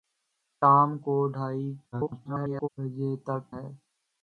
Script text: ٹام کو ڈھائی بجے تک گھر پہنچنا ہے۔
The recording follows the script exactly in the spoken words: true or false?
false